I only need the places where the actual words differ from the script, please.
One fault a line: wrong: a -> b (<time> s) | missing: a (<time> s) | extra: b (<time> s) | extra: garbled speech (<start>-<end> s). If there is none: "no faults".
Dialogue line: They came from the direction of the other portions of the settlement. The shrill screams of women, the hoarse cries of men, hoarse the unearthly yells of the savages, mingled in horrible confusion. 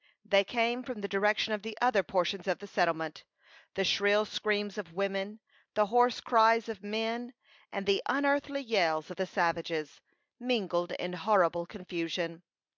wrong: hoarse -> and (7.7 s)